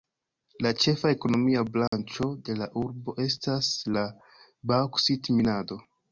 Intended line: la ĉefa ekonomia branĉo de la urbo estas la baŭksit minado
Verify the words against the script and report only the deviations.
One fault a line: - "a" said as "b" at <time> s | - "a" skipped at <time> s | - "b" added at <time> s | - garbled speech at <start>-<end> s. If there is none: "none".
none